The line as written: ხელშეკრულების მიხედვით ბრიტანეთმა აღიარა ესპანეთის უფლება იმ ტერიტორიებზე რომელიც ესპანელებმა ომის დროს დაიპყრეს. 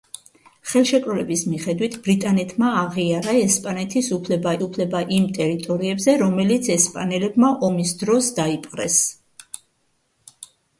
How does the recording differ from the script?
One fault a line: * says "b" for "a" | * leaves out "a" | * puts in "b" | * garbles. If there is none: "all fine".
* puts in "უფლება"